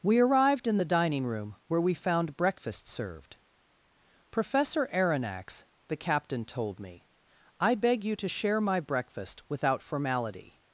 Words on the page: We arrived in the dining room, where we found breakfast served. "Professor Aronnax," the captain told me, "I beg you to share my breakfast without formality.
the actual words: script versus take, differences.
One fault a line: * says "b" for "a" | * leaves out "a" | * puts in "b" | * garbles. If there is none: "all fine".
all fine